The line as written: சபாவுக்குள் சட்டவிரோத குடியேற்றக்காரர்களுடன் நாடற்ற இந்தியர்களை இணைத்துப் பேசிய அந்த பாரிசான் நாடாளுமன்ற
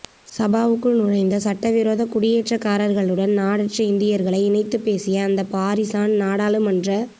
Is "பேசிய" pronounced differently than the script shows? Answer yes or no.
no